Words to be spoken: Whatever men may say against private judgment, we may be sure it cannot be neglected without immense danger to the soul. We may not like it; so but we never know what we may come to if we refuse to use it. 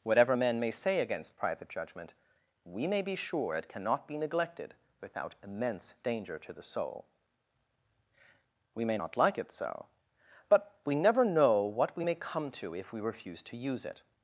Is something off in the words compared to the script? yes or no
no